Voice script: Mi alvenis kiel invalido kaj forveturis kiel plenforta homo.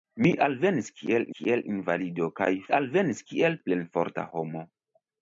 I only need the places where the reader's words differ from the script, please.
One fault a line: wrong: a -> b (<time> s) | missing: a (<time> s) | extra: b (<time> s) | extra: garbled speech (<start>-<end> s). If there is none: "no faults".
extra: kiel (1.4 s)
wrong: forveturis -> alvenis (2.8 s)